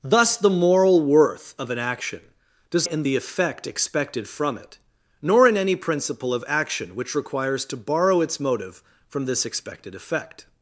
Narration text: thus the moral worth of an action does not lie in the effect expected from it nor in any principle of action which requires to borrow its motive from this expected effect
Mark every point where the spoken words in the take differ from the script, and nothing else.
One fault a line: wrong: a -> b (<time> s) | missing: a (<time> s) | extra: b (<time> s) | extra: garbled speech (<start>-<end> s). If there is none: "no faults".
missing: not lie (2.9 s)